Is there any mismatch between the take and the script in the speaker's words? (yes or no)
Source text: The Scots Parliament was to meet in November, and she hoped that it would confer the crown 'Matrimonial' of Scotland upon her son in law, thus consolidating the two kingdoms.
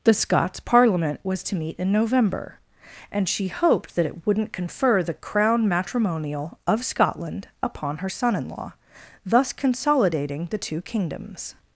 yes